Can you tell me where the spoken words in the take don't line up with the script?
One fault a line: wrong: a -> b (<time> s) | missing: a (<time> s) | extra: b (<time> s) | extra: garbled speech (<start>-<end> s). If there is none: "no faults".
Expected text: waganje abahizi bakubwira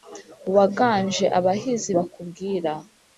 no faults